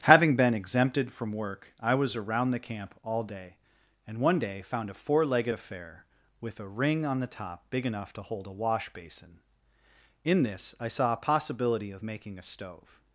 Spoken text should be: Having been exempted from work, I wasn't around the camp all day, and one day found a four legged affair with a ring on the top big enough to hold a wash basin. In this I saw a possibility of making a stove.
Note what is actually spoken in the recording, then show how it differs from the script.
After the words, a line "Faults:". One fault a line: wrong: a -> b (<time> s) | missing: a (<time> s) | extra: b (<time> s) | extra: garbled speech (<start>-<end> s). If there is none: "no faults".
Having been exempted from work, I was around the camp all day, and one day found a four legged affair with a ring on the top big enough to hold a wash basin. In this I saw a possibility of making a stove.
Faults:
wrong: wasn't -> was (1.9 s)